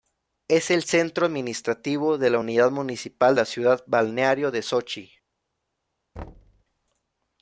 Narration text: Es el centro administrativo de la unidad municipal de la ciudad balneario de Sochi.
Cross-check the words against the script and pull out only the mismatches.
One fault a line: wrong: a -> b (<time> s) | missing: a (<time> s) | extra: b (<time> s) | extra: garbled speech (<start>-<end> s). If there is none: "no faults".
missing: de (3.4 s)